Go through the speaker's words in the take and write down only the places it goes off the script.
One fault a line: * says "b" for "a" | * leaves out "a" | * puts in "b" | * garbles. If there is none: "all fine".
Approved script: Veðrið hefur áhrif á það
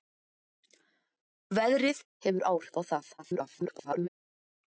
* garbles